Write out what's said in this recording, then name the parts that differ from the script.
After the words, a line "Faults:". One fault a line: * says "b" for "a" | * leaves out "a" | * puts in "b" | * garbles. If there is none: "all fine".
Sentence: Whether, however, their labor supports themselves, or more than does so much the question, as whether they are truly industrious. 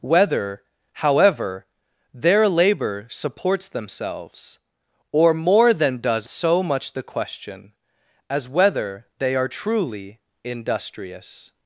Whether, however, their labor supports themselves, or more than does so much the question, as whether they are truly industrious.
Faults:
all fine